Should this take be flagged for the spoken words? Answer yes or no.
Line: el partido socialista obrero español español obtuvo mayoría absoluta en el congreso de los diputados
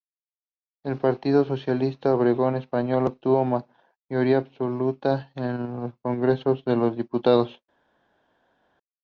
yes